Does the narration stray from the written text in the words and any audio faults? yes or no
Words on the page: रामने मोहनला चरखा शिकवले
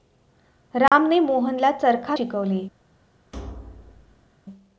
yes